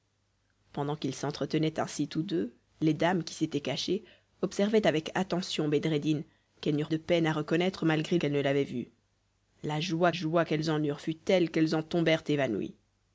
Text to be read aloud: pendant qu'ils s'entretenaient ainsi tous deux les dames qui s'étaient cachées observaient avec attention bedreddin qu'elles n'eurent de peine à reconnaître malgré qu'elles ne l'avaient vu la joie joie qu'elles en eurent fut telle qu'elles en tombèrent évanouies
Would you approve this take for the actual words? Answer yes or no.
yes